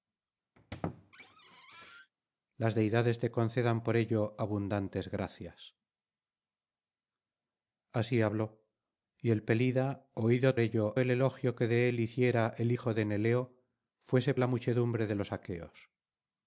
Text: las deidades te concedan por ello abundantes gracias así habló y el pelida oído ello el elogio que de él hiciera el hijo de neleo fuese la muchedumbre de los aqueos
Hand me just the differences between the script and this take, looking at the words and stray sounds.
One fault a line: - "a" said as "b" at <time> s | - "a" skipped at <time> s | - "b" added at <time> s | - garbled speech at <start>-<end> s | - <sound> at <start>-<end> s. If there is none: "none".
- squeak at 0.6-2.1 s